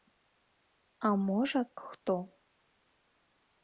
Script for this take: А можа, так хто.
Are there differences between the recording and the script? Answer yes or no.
yes